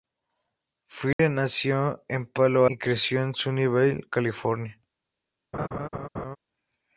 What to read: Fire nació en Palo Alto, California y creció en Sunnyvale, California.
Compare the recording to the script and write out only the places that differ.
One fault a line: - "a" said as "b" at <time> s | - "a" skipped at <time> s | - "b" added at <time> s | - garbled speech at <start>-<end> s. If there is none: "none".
- "Alto California" skipped at 2.6 s